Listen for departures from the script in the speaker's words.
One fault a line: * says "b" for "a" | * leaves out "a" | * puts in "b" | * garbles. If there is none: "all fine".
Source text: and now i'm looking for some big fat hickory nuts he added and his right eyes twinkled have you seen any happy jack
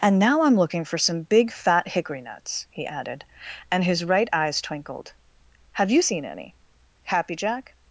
all fine